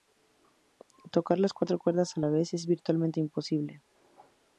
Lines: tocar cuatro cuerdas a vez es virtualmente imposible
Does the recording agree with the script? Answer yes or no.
no